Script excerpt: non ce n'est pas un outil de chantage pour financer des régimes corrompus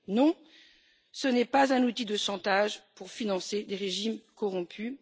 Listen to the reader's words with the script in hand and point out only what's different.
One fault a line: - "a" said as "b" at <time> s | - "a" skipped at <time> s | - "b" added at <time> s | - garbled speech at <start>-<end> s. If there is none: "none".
none